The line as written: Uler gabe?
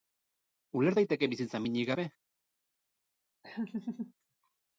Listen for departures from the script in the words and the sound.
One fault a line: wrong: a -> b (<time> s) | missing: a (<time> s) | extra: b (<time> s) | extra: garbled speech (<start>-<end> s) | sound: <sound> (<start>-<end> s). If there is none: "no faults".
extra: daiteke bizitza minik (1.0 s)
sound: laugh (3.4-4.1 s)